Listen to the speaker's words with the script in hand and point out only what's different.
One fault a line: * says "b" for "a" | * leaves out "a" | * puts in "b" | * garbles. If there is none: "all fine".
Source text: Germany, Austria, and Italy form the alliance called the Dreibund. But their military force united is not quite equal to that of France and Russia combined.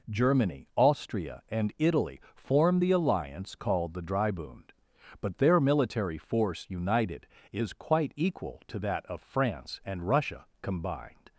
* leaves out "not"